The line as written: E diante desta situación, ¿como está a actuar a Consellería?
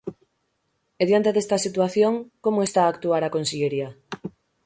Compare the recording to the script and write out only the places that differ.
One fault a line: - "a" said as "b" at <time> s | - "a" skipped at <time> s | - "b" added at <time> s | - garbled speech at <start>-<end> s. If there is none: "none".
none